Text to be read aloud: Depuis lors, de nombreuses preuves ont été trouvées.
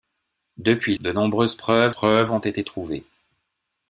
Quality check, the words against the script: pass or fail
fail